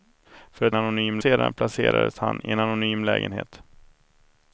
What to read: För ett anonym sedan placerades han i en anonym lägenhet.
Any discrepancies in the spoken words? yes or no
no